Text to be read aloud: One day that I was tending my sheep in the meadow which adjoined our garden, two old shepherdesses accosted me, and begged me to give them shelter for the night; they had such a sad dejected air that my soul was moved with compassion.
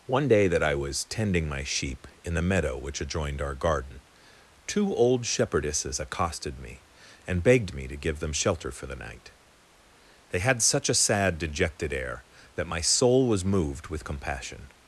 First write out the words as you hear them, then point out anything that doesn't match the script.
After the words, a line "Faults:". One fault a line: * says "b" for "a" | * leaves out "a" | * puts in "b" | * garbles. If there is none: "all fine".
One day that I was tending my sheep in the meadow which adjoined our garden, two old shepherdesses accosted me, and begged me to give them shelter for the night; they had such a sad dejected air that my soul was moved with compassion.
Faults:
all fine